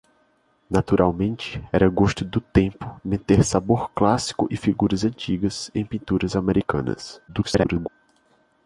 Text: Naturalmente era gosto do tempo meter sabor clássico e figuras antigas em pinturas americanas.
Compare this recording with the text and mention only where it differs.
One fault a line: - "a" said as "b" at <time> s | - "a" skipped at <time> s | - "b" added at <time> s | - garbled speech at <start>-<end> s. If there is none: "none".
- garbled speech at 7.3-7.9 s